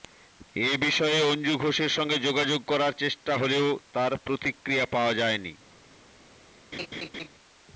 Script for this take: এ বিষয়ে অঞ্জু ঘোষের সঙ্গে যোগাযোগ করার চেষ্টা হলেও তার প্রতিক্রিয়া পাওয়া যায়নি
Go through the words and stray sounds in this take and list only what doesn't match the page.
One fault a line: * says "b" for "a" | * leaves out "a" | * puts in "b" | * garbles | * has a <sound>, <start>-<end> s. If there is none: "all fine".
* has a laugh, 6.7-7.3 s